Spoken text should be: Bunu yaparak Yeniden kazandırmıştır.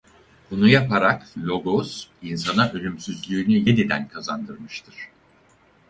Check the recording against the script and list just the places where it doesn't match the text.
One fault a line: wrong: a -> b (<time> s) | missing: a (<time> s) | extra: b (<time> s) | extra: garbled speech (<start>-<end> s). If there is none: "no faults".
extra: Logos insana ölümsüzlüğünü (1.4 s)